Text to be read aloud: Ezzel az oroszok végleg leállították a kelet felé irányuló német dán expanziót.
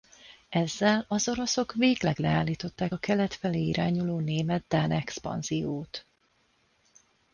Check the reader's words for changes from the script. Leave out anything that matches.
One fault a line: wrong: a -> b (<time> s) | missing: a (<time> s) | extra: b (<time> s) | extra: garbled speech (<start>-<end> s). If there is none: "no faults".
no faults